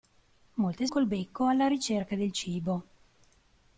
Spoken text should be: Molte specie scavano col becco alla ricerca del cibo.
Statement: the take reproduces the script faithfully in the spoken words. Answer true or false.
false